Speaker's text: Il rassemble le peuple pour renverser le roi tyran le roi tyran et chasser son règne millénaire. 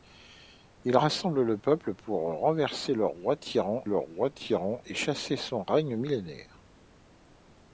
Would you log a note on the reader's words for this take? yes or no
no